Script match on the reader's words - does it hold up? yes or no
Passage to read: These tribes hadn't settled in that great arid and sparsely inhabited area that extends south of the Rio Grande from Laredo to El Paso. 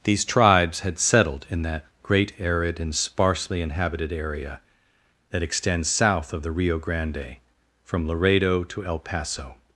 no